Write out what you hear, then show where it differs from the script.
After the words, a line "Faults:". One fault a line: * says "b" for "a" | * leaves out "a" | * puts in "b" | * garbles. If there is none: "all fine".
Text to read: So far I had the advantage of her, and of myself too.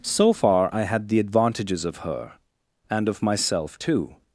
So far I had the advantages of her, and of myself too.
Faults:
* says "advantages" for "advantage"